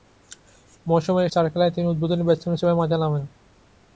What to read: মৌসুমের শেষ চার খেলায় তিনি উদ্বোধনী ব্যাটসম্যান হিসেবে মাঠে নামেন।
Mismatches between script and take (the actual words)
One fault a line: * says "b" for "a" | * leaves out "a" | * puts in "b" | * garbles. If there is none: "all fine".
* leaves out "শেষ"